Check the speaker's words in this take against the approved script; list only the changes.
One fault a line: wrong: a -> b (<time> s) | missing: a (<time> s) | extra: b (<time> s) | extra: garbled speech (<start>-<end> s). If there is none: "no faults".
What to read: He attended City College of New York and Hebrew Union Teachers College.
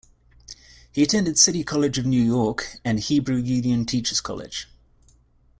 no faults